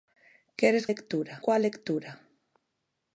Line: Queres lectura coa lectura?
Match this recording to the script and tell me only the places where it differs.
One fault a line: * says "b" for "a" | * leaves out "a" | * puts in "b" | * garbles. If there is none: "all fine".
all fine